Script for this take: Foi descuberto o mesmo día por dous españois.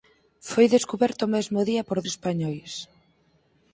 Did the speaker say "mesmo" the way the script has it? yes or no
yes